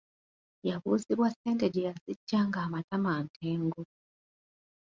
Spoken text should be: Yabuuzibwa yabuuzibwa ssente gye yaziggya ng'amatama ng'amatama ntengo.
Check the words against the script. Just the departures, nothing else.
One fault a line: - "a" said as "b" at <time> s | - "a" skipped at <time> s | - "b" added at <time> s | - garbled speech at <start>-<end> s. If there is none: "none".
- "yabuuzibwa" skipped at 1.3 s
- "ng'amatama" skipped at 3.1 s